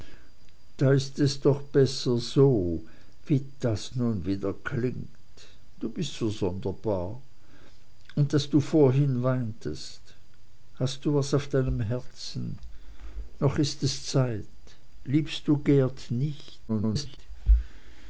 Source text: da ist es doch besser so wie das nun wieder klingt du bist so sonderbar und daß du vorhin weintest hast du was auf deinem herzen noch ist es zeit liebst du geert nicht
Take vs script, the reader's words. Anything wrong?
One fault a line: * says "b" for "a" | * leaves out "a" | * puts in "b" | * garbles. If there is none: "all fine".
* garbles